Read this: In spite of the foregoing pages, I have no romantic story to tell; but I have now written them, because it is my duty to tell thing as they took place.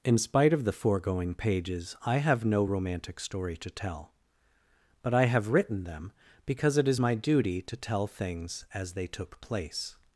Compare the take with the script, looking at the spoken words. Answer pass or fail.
fail